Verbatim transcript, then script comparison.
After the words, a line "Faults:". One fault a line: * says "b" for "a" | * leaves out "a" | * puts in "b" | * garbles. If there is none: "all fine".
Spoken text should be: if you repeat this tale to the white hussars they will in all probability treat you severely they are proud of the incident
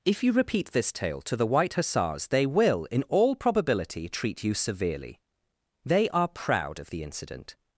if you repeat this tale to the white hussars they will in all probability treat you severely they are proud of the incident
Faults:
all fine